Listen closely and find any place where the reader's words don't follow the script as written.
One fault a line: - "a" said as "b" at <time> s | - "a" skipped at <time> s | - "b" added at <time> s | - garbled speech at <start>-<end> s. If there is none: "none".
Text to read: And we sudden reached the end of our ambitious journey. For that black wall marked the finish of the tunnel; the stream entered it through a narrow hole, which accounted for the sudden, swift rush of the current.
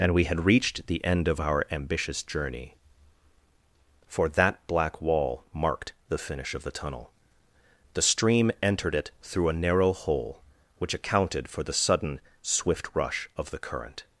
- "sudden" said as "had" at 0.2 s